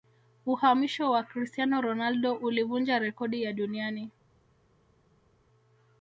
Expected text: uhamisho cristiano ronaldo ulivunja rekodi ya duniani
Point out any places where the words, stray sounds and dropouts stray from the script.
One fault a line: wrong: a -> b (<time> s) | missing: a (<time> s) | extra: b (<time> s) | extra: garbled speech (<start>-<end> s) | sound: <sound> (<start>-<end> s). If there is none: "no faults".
extra: wa (1.1 s)